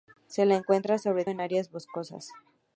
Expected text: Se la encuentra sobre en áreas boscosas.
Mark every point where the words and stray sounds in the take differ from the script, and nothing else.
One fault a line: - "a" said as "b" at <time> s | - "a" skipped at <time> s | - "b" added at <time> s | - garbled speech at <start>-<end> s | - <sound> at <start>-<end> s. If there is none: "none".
none